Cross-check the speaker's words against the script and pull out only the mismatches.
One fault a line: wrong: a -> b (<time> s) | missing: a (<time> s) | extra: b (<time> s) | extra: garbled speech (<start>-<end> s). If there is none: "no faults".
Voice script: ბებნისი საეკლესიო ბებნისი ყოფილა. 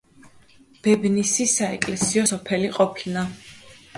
wrong: ბებნისი -> სოფელი (2.3 s)